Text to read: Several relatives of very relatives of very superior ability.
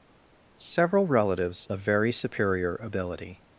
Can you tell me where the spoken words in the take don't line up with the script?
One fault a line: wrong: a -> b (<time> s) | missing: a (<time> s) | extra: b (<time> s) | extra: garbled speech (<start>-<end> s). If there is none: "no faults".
missing: relatives of very (2.1 s)